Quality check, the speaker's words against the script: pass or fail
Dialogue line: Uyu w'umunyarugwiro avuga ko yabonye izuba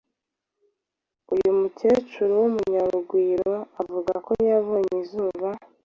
fail